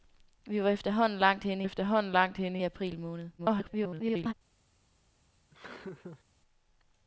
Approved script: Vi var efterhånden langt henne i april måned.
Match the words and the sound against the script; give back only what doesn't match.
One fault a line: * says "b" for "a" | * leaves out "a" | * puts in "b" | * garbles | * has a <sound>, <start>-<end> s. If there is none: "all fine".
* puts in "efterhånden langt henne"
* garbles
* has a laugh, 5.5-6.2 s